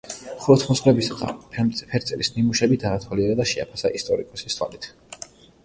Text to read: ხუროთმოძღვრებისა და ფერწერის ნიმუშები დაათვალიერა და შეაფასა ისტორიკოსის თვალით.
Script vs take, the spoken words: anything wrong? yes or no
no